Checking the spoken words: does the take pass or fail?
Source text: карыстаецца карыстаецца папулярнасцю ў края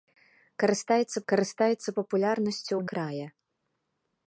pass